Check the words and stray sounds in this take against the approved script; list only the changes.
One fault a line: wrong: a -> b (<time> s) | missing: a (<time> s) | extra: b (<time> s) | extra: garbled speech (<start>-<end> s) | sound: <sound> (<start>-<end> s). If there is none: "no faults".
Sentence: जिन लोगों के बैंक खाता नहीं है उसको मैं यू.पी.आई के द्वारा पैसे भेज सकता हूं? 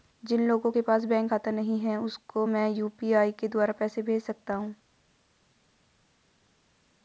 extra: पास (0.8 s)